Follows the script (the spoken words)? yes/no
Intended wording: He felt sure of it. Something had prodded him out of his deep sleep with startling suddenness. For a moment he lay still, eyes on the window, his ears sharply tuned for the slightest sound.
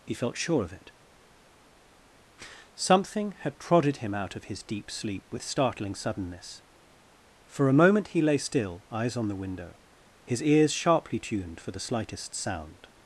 yes